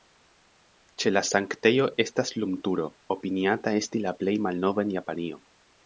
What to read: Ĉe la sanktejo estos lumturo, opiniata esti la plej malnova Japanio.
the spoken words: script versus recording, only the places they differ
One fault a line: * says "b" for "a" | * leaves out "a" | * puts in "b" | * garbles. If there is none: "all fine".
* says "estas" for "estos"
* puts in "en"